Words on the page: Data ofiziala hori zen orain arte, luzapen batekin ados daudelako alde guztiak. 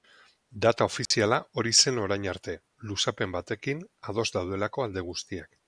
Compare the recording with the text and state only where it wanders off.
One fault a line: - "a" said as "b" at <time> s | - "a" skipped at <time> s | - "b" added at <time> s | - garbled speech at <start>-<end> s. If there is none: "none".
none